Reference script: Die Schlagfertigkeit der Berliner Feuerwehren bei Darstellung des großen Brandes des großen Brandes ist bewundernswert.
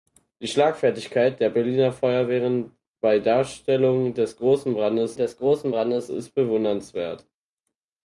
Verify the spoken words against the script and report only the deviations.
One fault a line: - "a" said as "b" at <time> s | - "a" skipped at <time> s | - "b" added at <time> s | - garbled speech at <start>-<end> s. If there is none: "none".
none